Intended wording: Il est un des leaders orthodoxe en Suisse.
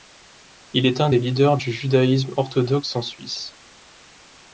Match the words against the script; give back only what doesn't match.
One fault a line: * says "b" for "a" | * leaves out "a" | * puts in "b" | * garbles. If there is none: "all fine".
* puts in "du Judaïsme"